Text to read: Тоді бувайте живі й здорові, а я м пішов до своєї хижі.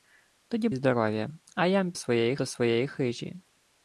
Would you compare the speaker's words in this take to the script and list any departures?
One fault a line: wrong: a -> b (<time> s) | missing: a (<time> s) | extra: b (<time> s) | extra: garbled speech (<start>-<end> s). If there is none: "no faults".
missing: бувайте живі (0.7 s)
wrong: пішов -> своєї (1.9 s)